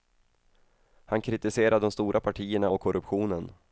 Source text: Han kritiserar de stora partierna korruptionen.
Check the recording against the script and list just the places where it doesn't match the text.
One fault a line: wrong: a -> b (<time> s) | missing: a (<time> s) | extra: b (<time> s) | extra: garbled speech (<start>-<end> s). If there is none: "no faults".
extra: och (2.7 s)